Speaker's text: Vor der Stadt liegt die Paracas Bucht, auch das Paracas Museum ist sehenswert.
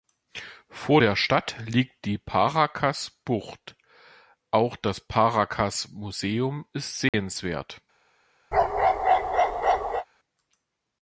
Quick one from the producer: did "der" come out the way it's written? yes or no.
yes